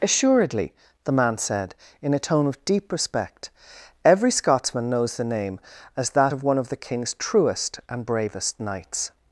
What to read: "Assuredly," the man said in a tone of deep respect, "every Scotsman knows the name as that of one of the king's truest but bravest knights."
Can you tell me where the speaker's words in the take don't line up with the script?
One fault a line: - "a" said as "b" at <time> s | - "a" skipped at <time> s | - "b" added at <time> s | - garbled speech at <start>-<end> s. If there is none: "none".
- "but" said as "and" at 7.9 s